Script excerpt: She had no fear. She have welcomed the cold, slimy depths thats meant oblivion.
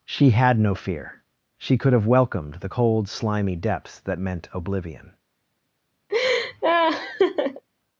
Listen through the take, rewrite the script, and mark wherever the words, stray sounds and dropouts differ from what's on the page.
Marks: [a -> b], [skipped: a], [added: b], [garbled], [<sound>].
She had no fear. She [added: could] have welcomed the cold, slimy depths [thats -> that] meant oblivion. [laugh]